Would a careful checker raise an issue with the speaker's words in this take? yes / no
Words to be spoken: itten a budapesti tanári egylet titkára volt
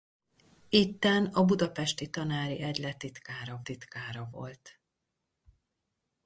yes